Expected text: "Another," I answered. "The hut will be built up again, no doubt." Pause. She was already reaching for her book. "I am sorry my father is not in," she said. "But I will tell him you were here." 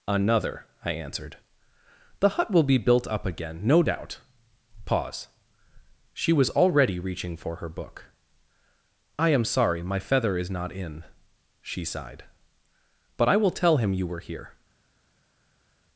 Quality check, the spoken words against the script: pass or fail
fail